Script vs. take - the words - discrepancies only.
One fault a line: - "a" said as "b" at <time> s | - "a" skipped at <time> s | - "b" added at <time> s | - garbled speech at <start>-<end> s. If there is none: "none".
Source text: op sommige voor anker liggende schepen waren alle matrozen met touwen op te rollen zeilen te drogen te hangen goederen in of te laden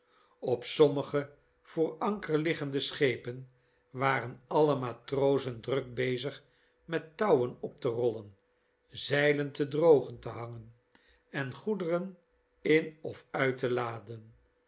- "druk bezig" added at 5.6 s
- "en" added at 11.3 s
- "uit" added at 13.3 s